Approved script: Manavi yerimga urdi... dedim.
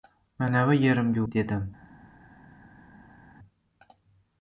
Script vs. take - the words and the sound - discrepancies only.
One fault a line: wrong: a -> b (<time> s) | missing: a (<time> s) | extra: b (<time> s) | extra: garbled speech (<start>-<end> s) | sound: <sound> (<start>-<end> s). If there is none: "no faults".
missing: urdi (1.2 s)